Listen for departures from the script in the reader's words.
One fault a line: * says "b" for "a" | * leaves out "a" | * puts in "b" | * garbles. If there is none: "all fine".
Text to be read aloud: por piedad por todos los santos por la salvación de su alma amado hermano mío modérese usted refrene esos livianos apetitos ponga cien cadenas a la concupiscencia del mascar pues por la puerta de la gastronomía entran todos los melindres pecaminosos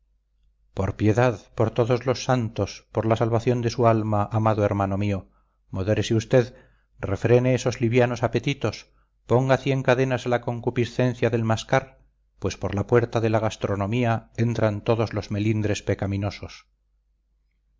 all fine